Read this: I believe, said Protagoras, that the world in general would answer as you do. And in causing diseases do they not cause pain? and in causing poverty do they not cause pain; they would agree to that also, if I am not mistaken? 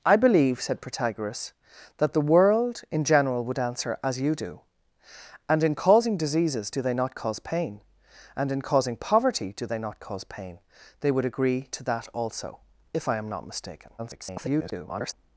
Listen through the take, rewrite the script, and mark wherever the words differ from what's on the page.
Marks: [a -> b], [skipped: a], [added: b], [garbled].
I believe, said Protagoras, that the world in general would answer as you do. And in causing diseases do they not cause pain? and in causing poverty do they not cause pain; they would agree to that also, if I am not mistaken? [garbled]